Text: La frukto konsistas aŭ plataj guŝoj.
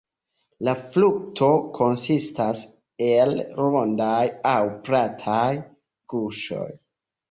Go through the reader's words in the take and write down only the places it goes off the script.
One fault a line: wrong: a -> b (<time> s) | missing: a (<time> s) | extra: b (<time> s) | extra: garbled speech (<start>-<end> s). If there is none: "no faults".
extra: el rondaj (3.1 s)